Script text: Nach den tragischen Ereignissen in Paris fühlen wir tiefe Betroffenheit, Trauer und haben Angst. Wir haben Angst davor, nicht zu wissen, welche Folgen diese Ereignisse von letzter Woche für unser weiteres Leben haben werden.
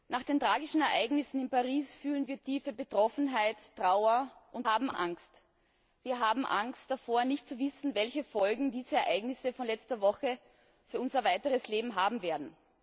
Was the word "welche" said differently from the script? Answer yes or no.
no